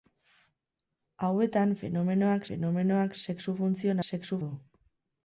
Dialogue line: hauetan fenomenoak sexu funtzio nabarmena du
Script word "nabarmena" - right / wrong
wrong